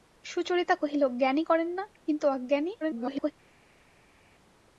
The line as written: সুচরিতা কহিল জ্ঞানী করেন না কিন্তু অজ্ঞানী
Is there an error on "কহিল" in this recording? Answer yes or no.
no